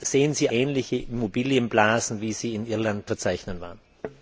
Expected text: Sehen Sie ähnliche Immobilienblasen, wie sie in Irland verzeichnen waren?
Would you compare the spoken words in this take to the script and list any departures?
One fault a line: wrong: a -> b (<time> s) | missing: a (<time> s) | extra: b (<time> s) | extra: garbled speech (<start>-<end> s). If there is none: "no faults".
no faults